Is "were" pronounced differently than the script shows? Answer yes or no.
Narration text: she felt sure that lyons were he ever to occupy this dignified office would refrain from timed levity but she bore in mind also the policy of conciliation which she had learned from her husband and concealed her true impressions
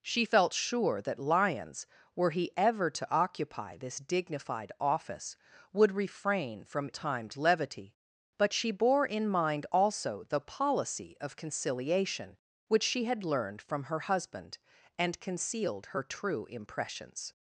no